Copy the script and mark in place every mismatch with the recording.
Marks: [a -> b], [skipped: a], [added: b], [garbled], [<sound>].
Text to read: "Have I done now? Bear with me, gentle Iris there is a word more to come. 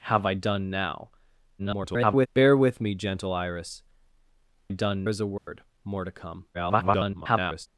"Have I done now? [garbled] Bear with me, gentle Iris [there -> done] is a word [dropout] more to come. [garbled]